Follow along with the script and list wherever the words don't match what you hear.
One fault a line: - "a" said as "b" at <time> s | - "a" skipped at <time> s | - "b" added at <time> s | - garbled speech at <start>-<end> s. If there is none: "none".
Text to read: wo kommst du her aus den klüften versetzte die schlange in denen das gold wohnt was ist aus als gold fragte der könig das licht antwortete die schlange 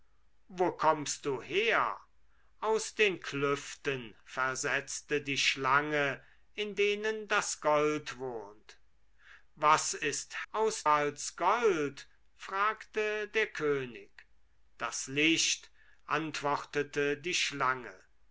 none